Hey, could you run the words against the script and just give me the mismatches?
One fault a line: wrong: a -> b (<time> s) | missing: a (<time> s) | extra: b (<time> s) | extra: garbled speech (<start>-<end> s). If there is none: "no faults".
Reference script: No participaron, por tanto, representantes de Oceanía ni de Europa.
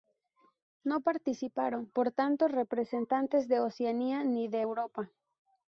no faults